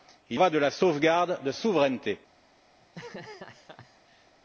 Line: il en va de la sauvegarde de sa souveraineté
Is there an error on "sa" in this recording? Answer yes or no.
yes